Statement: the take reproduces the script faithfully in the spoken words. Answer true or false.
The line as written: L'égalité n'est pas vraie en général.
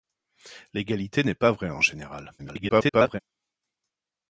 false